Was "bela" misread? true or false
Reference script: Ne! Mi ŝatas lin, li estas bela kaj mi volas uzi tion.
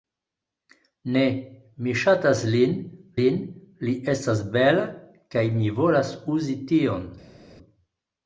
false